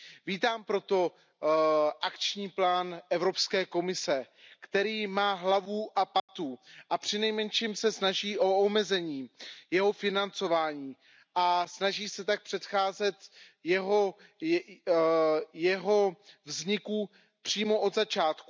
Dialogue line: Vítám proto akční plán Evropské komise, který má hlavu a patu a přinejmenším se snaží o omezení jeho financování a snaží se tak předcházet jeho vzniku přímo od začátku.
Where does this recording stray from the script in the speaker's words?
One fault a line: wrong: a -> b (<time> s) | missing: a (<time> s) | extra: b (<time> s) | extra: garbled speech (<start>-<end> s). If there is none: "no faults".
no faults